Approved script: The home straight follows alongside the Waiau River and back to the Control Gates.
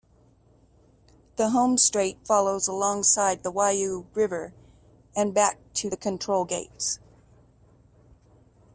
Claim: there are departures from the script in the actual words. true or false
false